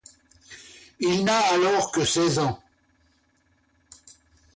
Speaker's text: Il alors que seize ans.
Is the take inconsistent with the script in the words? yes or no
yes